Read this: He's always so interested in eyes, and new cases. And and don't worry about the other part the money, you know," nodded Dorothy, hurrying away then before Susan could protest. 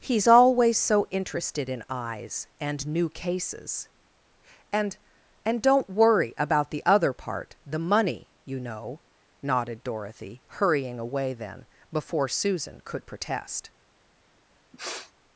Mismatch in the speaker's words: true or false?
false